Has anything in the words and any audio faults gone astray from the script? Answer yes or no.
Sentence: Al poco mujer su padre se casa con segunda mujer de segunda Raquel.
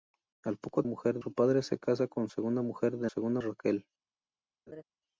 yes